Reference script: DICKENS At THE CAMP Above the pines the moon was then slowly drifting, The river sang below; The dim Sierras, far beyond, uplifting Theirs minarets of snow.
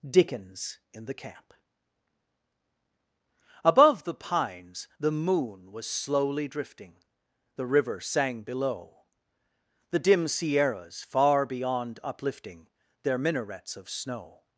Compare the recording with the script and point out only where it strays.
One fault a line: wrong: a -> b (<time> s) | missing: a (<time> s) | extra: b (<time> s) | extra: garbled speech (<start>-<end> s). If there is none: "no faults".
wrong: At -> IN (0.9 s)
missing: then (5.9 s)
wrong: Theirs -> Their (13.0 s)